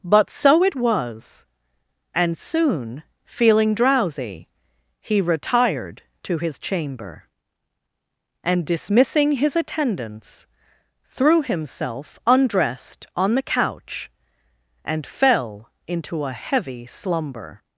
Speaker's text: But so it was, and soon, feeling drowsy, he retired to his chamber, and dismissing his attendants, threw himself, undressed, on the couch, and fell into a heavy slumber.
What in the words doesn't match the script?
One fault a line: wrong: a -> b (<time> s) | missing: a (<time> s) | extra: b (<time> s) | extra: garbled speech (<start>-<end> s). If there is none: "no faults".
no faults